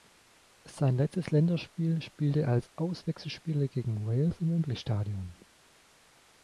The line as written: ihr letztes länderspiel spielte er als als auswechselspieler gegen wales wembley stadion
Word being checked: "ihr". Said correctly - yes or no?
no